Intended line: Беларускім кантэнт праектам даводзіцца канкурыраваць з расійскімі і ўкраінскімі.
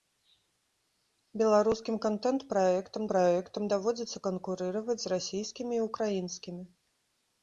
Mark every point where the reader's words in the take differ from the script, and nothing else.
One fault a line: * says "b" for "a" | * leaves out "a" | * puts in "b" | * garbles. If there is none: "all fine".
* puts in "праектам"